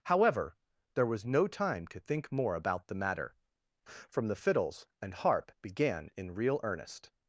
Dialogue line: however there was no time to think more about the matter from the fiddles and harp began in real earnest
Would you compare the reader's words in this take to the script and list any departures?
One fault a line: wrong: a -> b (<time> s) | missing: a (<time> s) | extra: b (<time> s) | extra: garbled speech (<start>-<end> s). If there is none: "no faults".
no faults